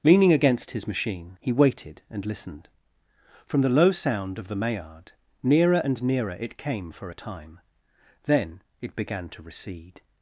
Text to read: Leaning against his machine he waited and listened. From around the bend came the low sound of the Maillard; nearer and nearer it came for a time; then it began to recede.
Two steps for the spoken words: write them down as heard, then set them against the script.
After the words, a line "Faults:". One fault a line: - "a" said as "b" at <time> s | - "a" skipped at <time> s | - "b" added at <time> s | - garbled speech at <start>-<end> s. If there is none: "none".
Leaning against his machine he waited and listened. From the low sound of the Maillard; nearer and nearer it came for a time; then it began to recede.
Faults:
- "around the bend came" skipped at 3.6 s